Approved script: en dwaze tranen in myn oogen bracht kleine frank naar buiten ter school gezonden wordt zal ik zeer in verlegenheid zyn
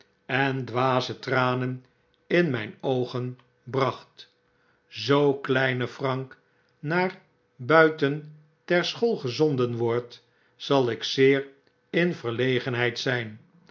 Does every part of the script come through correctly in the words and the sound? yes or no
no